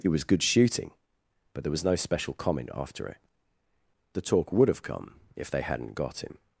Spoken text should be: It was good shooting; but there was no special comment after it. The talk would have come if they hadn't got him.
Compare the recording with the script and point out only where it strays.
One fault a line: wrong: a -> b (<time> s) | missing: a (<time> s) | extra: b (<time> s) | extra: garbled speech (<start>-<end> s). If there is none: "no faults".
no faults